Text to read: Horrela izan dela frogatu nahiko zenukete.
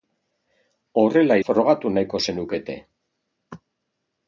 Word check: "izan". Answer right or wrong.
wrong